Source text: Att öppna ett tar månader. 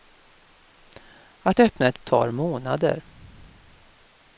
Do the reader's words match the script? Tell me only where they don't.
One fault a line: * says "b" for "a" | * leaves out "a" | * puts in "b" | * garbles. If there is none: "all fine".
all fine